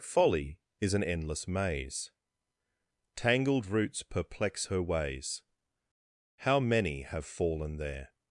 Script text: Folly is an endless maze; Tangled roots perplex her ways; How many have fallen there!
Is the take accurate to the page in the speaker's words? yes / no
yes